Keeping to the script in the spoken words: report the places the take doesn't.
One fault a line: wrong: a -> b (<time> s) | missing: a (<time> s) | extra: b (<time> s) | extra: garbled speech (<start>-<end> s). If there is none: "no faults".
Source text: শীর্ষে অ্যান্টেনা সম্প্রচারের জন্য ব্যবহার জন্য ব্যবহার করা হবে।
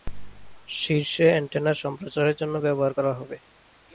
missing: জন্য ব্যবহার (2.9 s)